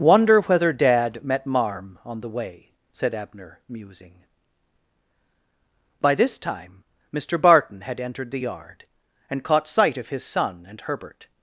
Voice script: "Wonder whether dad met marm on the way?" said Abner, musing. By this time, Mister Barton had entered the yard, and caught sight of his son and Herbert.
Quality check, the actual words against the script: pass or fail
pass